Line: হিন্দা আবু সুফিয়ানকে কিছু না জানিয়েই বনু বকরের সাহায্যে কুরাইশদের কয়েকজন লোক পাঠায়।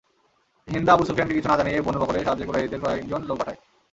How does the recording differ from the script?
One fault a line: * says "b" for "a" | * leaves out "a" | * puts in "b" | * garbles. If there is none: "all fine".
all fine